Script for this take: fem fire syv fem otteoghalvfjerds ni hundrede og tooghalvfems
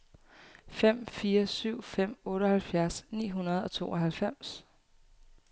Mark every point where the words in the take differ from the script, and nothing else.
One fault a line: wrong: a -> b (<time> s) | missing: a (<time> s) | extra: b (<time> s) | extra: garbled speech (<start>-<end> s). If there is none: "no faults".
no faults